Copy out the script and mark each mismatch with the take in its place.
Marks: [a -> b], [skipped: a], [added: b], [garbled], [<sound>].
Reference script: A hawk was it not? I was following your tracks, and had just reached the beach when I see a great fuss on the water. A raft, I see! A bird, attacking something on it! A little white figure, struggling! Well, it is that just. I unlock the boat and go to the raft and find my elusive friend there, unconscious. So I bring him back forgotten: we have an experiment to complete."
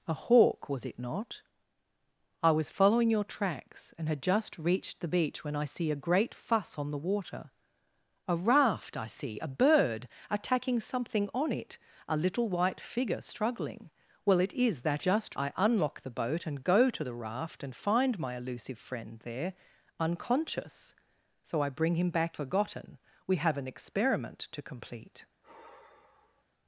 A hawk was it not? I was following your tracks, and had just reached the beach when I see a great fuss on the water. A raft, I see! A bird, attacking something on it! A little white figure, struggling! Well, it is that just. I unlock the boat and go to the raft and find my elusive friend there, unconscious. So I bring him back forgotten: we have an experiment to complete." [sigh]